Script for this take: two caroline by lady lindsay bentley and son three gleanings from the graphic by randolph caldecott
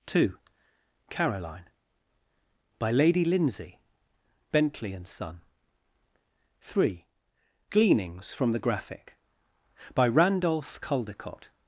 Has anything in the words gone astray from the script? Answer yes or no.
no